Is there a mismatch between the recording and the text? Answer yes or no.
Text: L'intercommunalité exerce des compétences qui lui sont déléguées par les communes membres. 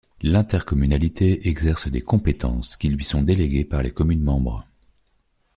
no